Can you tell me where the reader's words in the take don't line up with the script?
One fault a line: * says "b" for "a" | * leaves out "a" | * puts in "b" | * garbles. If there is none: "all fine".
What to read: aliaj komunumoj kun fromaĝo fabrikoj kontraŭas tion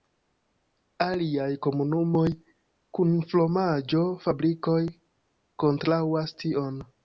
all fine